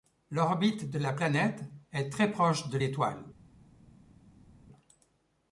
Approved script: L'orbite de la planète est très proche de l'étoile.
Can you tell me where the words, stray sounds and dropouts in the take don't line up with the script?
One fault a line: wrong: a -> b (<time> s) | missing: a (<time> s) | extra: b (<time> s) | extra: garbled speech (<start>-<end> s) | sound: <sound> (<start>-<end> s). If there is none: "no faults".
no faults